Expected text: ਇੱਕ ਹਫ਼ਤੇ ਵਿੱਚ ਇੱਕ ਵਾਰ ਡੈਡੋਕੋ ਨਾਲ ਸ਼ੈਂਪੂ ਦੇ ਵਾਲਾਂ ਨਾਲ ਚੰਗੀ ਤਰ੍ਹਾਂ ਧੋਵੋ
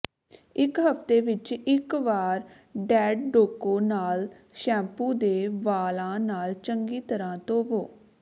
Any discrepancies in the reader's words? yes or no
no